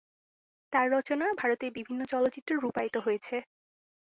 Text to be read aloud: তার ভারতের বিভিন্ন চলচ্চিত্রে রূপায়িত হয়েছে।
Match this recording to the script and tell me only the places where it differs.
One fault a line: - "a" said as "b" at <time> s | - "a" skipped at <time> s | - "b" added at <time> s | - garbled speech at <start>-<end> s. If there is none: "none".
- "রচনা" added at 0.9 s